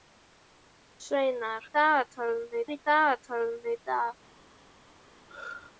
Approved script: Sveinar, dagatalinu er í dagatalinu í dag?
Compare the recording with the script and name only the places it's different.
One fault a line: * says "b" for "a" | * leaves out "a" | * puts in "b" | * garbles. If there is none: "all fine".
all fine